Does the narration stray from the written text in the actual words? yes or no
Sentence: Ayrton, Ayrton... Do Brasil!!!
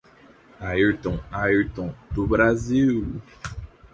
no